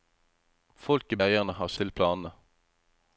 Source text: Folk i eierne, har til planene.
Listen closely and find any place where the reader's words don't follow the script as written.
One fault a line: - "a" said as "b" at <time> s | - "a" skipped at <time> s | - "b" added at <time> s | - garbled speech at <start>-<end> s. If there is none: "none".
none